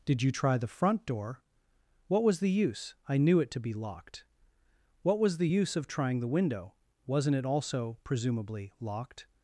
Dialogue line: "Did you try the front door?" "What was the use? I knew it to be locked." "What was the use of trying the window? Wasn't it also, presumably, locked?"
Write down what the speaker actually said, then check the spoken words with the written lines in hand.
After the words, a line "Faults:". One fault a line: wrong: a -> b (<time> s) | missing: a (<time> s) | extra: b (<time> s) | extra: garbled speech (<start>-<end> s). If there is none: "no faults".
"Did you try the front door?" "What was the use? I knew it to be locked." "What was the use of trying the window? Wasn't it also, presumably, locked?"
Faults:
no faults